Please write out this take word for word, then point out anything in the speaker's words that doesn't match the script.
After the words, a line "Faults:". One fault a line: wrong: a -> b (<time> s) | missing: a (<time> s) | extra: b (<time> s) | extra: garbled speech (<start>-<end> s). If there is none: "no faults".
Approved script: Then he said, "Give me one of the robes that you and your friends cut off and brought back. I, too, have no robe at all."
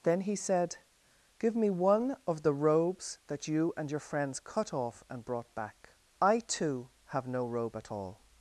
Then he said, "Give me one of the robes that you and your friends cut off and brought back. I, too, have no robe at all."
Faults:
no faults